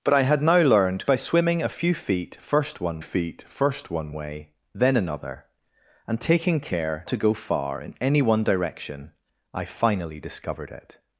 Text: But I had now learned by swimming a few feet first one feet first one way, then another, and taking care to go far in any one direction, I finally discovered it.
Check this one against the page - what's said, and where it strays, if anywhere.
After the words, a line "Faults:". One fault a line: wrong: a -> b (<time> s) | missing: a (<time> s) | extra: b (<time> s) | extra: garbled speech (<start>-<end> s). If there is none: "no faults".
But I had now learned by swimming a few feet first one feet first one way, then another, and taking care to go far in any one direction, I finally discovered it.
Faults:
no faults